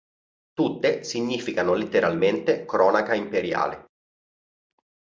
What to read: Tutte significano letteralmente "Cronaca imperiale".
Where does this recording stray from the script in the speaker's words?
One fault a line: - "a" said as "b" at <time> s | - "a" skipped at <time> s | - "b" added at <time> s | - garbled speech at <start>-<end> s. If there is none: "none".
none